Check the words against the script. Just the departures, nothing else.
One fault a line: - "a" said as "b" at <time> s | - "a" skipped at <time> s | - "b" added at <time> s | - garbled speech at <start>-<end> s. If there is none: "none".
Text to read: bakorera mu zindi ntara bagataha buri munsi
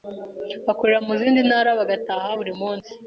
none